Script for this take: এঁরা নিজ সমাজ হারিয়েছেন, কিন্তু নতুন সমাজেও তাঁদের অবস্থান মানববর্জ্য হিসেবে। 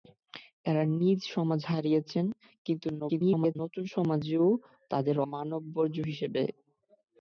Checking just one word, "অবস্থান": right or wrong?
wrong